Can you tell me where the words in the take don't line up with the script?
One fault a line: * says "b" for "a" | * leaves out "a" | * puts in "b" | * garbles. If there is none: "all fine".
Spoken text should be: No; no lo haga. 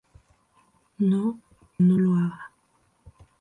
all fine